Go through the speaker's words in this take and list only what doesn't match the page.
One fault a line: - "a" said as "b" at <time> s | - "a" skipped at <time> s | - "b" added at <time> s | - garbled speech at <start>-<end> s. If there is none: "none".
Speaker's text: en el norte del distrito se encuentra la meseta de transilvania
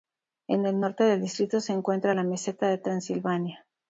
none